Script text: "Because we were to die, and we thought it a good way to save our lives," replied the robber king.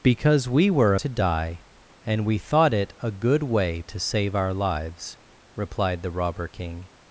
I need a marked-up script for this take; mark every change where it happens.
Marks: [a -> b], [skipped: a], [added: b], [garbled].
"Because we were to die, and we thought it a good way to save our lives," replied the robber king.